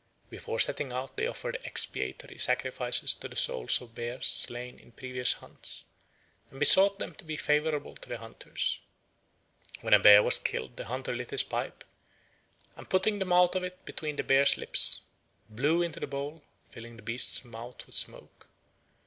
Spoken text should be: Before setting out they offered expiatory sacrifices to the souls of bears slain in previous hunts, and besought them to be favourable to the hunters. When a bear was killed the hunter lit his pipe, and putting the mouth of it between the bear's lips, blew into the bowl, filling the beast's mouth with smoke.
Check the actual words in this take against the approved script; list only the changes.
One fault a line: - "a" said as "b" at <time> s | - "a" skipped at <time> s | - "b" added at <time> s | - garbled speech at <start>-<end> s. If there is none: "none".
none